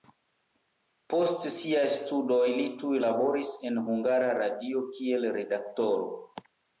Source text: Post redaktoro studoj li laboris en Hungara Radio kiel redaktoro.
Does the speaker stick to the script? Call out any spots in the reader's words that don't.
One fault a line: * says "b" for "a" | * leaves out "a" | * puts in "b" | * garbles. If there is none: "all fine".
* says "siaj" for "redaktoro"
* puts in "tuj"